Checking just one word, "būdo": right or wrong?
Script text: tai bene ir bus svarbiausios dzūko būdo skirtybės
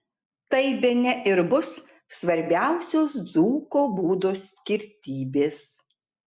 right